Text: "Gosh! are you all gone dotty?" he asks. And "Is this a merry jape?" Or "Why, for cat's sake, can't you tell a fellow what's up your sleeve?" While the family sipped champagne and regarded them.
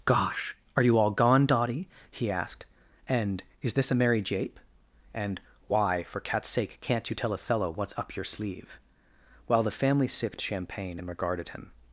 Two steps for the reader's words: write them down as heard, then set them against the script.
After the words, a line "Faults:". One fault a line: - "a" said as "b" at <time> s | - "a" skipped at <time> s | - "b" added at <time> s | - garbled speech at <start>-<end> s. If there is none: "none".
"Gosh! are you all gone dotty?" he asked. And "Is this a merry jape?" And "Why, for cat's sake, can't you tell a fellow what's up your sleeve?" While the family sipped champagne and regarded him.
Faults:
- "asks" said as "asked" at 2.3 s
- "Or" said as "And" at 5.1 s
- "them" said as "him" at 11.5 s